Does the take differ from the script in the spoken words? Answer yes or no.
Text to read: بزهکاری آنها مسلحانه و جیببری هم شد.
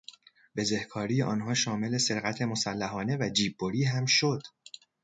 yes